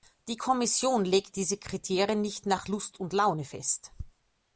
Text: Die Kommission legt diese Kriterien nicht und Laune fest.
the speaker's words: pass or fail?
fail